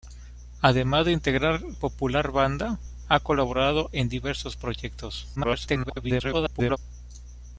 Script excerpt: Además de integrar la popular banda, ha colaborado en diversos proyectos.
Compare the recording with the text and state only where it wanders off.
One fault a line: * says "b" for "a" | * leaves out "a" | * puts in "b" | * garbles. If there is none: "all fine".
* leaves out "la"
* garbles